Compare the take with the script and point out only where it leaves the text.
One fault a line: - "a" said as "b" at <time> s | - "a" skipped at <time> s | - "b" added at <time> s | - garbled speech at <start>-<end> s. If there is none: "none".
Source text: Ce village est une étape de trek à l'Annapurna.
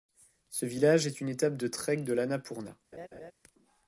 - "à" said as "de" at 2.0 s